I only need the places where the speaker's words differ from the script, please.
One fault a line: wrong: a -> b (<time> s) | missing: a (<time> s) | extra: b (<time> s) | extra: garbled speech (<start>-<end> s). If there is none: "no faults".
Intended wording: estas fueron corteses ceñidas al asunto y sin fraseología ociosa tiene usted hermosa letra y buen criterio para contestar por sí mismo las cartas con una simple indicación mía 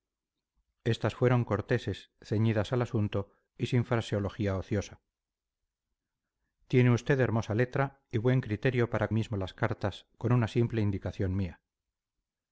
missing: contestar por sí (9.1 s)